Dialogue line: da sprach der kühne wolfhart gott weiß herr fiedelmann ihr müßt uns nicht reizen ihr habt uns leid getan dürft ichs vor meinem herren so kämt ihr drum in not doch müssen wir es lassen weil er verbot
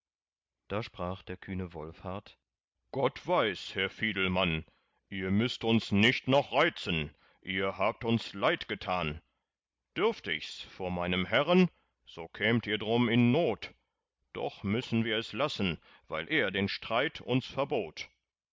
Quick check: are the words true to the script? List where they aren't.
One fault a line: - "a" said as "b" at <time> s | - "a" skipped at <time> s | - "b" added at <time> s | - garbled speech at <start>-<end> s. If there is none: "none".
- "noch" added at 6.3 s
- "den streit uns" added at 16.5 s